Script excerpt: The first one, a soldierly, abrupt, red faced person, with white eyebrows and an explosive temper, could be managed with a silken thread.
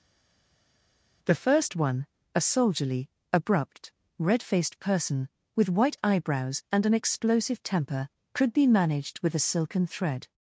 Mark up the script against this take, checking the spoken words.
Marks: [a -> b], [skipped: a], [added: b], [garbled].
The first one, a soldierly, abrupt, red faced person, with white eyebrows and an explosive temper, could be managed with a silken thread.